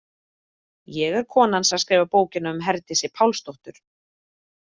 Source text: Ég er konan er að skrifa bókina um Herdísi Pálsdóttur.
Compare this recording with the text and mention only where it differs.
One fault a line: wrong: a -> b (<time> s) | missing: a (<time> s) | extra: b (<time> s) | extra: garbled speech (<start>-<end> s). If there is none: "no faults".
no faults